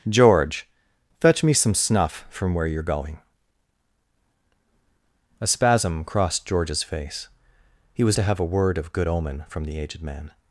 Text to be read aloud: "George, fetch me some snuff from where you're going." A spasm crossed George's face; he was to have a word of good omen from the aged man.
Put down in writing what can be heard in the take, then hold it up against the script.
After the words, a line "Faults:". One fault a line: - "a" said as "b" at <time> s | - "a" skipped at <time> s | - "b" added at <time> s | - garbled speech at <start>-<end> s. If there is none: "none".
"George, fetch me some snuff from where you're going." A spasm crossed George's face; he was to have a word of good omen from the aged man.
Faults:
none